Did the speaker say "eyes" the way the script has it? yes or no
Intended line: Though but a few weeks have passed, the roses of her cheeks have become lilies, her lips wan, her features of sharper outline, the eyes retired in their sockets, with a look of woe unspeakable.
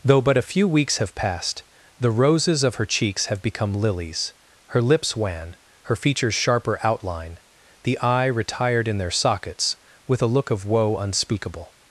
no